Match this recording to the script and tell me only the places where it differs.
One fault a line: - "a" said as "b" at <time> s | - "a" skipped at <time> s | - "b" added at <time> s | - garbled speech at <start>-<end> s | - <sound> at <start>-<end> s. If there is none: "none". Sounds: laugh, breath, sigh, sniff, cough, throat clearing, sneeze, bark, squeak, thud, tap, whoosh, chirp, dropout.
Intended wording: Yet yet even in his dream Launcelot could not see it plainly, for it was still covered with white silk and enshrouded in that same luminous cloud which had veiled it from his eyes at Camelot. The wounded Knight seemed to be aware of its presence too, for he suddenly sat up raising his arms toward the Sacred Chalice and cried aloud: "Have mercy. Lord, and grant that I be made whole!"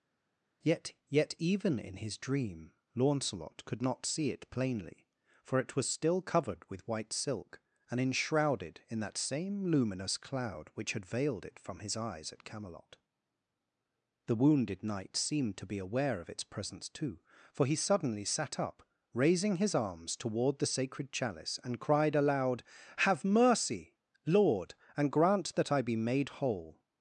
none